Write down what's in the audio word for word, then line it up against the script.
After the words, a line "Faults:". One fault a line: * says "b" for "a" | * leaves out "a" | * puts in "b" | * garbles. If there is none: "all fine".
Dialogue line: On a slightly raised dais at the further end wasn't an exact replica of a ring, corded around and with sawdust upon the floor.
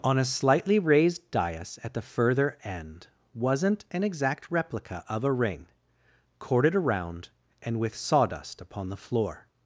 On a slightly raised dais at the further end wasn't an exact replica of a ring, corded around and with sawdust upon the floor.
Faults:
all fine